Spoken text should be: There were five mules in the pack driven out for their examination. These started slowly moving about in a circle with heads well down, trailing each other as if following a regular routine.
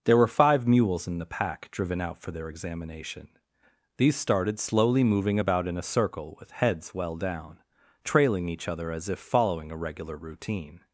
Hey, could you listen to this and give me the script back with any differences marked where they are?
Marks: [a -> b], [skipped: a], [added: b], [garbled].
There were five mules in the pack driven out for their examination. These started slowly moving about in a circle with heads well down, trailing each other as if following a regular routine.